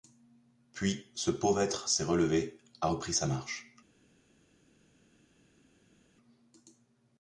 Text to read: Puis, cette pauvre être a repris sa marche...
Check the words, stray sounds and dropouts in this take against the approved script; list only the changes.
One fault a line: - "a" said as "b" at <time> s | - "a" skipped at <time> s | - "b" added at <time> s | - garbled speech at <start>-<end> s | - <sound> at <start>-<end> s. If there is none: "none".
- "cette" said as "ce" at 1.1 s
- "s'est relevé" added at 1.9 s